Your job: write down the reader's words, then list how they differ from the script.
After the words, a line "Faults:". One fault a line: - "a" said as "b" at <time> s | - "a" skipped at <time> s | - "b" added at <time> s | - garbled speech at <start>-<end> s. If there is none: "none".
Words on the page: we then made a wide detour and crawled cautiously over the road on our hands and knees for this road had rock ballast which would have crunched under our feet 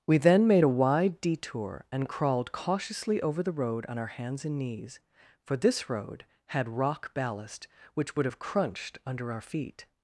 we then made a wide detour and crawled cautiously over the road on our hands and knees for this road had rock ballast which would have crunched under our feet
Faults:
none